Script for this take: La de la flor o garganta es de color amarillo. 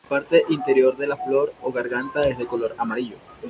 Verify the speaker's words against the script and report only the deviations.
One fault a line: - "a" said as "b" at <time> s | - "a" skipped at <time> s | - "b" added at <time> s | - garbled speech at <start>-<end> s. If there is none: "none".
- "parte interior" added at 0.2 s